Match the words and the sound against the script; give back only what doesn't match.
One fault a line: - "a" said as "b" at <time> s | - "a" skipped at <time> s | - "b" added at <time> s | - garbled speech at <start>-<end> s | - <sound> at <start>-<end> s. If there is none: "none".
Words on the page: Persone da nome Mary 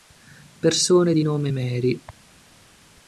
- "da" said as "di" at 1.1 s